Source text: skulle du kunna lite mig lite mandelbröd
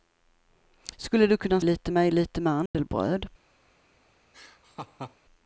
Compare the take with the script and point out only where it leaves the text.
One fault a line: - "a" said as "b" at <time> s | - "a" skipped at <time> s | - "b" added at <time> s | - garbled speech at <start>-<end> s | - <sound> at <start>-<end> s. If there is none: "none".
- dropout at 2.7-2.7 s
- laugh at 4.3-5.2 s